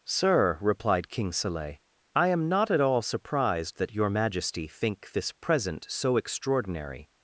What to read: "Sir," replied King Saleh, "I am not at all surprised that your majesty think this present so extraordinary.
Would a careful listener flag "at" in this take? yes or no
no